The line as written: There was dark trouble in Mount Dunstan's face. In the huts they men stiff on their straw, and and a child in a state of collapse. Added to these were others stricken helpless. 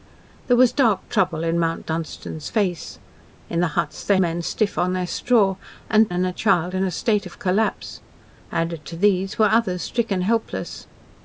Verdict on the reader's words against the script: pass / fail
pass